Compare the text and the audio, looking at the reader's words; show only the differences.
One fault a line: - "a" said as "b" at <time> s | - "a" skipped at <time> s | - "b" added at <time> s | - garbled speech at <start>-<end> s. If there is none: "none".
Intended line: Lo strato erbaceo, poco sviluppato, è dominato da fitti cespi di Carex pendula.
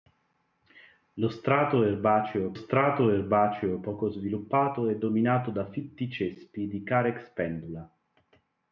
- "strato erbaceo" added at 2.5 s